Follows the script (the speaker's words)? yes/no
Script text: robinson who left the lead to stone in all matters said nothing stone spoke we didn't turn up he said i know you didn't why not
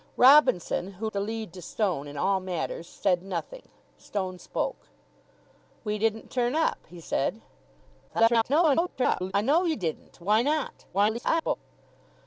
no